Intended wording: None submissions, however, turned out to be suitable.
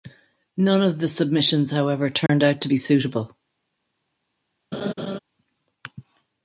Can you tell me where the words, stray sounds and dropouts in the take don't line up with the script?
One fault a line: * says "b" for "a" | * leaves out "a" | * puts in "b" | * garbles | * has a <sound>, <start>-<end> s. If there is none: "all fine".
* puts in "of the"
* has a dropout, 2.3-2.3 s
* has a laugh, 4.7-5.2 s